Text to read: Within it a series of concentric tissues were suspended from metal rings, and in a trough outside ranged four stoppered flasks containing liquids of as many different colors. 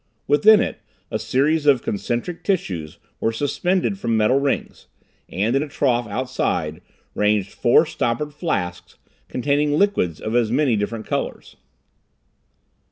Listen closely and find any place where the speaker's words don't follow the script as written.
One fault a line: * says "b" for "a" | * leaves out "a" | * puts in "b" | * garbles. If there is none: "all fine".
all fine